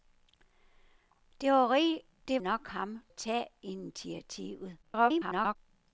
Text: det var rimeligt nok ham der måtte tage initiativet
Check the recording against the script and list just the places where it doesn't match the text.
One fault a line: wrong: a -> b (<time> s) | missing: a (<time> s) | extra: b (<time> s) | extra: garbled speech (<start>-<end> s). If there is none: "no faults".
missing: var rimeligt (2.4 s)
missing: der måtte (3.0 s)
extra: garbled speech (4.8-5.6 s)